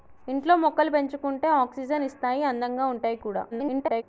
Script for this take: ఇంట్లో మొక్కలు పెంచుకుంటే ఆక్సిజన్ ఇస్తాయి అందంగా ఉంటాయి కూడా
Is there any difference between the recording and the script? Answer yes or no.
yes